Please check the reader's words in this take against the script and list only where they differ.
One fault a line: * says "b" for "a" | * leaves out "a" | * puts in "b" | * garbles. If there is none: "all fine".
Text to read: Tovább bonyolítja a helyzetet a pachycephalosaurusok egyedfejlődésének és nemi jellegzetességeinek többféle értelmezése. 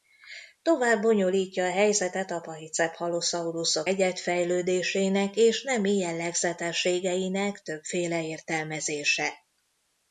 all fine